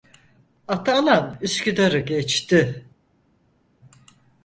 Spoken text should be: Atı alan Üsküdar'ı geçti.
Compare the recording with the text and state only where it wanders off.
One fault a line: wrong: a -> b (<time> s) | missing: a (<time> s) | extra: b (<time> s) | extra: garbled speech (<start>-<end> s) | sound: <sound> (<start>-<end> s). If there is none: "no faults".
no faults